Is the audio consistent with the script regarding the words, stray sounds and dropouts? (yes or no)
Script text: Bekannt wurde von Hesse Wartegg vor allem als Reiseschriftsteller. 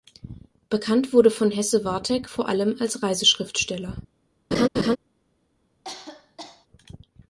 no